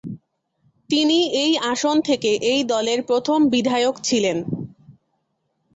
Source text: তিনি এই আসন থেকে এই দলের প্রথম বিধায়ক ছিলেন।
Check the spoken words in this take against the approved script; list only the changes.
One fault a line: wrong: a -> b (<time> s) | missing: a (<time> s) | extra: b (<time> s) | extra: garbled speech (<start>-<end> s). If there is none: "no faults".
no faults